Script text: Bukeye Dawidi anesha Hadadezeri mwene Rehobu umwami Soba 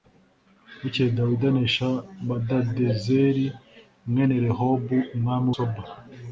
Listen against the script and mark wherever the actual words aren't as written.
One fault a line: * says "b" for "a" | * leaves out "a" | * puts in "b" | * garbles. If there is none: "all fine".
all fine